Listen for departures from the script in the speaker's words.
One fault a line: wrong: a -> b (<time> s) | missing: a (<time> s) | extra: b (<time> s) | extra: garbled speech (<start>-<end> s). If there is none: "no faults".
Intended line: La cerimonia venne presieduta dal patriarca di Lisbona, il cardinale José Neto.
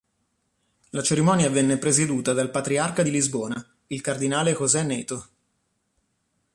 no faults